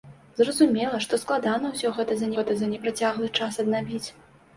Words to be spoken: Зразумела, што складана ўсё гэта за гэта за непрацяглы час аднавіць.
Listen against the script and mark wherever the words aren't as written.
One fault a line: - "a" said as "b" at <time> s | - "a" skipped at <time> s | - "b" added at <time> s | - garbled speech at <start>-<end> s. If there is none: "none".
none